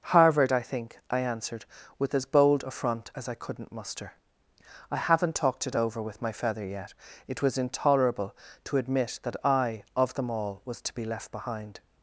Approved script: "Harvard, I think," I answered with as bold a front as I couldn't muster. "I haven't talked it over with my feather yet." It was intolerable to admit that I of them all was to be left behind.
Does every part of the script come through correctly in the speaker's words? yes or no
yes